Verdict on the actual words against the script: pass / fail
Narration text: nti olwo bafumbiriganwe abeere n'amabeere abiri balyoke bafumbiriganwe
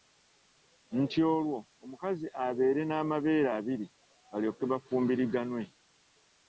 fail